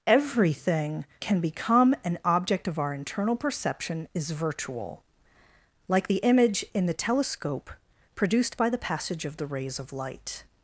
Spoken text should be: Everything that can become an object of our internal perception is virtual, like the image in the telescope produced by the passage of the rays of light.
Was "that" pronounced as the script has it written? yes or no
no